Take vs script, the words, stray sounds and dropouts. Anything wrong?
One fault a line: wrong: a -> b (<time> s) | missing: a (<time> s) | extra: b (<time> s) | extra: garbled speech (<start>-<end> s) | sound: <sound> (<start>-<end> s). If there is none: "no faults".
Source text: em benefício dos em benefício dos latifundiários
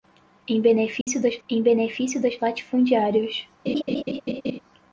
sound: dropout (1.0-1.1 s)
sound: laugh (3.7-4.6 s)